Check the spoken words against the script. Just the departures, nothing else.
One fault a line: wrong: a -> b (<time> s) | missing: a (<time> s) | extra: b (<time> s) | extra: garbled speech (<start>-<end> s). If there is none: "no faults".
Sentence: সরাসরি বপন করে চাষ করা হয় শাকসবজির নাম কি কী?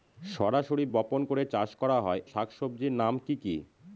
no faults